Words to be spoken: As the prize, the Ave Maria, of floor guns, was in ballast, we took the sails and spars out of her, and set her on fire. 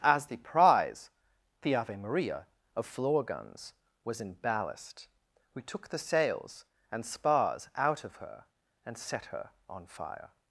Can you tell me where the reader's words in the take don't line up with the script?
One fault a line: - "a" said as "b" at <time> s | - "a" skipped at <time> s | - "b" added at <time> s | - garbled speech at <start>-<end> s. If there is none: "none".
none